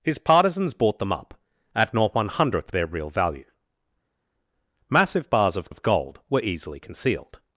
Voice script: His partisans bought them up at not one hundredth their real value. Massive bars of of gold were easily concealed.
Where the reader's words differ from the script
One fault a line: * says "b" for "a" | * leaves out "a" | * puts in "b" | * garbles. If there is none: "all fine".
all fine